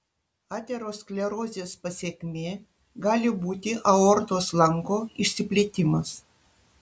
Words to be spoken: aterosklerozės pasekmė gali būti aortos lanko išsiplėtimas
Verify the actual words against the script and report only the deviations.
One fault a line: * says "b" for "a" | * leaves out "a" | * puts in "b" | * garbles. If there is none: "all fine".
all fine